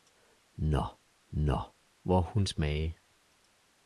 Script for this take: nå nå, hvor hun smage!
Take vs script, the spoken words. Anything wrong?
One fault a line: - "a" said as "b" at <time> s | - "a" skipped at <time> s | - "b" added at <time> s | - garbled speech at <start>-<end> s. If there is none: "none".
none